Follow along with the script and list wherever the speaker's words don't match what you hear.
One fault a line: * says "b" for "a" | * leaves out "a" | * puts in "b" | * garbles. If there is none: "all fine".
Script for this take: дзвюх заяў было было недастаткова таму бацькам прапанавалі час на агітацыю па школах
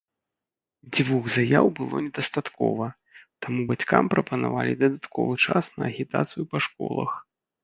* leaves out "было"
* puts in "дадатковы"